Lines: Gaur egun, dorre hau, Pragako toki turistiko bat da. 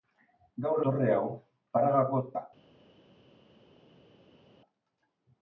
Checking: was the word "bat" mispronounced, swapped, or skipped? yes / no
yes